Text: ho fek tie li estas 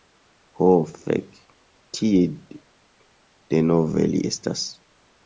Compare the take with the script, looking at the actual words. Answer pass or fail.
fail